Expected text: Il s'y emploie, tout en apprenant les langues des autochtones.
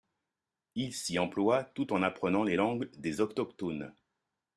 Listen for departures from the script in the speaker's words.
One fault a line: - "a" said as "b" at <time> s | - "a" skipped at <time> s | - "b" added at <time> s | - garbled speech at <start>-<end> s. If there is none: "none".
none